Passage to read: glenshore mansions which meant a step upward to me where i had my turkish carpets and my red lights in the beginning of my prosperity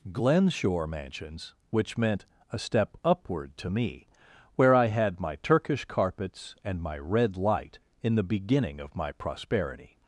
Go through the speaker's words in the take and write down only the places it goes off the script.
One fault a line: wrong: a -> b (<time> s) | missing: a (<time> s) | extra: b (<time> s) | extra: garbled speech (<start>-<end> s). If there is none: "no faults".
wrong: lights -> light (7.4 s)